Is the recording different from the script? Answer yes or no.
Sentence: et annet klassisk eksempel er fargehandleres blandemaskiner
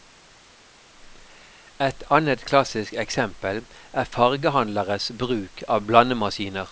yes